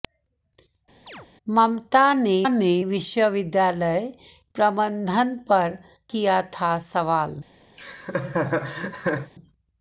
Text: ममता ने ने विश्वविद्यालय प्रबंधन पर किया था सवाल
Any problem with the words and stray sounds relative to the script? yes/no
yes